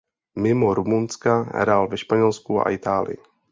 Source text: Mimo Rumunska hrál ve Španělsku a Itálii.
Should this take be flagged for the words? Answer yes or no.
no